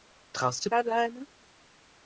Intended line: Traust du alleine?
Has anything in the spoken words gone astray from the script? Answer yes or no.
no